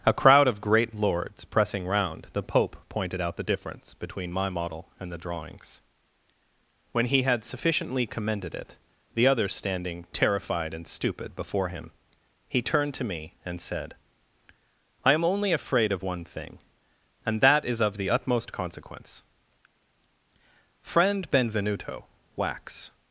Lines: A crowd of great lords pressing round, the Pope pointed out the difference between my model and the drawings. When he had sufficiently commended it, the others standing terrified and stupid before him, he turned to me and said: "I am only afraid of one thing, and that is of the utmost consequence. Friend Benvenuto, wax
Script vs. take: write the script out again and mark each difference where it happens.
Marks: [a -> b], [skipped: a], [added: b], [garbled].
A crowd of great lords pressing round, the Pope pointed out the difference between my model and the drawings. When he had sufficiently commended it, the others standing terrified and stupid before him, he turned to me and said: "I am only afraid of one thing, and that is of the utmost consequence. Friend Benvenuto, wax